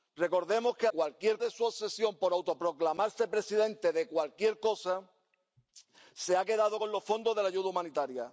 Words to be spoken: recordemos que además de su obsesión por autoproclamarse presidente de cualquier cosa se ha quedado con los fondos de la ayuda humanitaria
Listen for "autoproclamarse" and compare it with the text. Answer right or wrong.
right